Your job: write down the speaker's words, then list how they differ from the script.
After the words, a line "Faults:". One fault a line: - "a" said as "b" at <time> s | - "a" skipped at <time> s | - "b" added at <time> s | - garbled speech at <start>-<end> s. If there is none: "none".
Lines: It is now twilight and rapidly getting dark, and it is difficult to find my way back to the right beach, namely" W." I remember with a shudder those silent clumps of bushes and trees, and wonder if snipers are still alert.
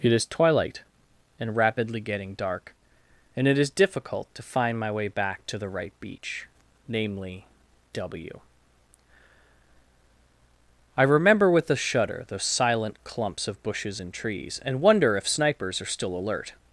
It is twilight and rapidly getting dark, and it is difficult to find my way back to the right beach, namely" W." I remember with a shudder those silent clumps of bushes and trees, and wonder if snipers are still alert.
Faults:
- "now" skipped at 0.2 s